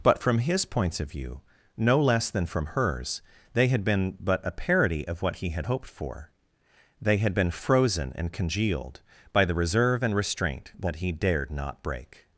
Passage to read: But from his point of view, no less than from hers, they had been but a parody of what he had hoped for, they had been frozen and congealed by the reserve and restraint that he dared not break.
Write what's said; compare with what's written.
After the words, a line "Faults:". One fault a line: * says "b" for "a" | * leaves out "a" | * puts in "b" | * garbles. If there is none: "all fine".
But from his points of view, no less than from hers, they had been but a parody of what he had hoped for, they had been frozen and congealed by the reserve and restraint that he dared not break.
Faults:
* says "points" for "point"